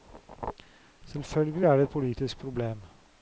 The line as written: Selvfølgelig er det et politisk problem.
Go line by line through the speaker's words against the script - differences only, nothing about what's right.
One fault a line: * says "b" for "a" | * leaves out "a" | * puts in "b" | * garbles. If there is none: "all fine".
all fine